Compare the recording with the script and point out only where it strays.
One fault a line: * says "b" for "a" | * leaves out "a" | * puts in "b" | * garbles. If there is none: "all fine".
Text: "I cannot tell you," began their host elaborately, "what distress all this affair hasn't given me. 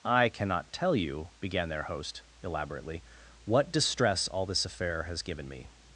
* says "has" for "hasn't"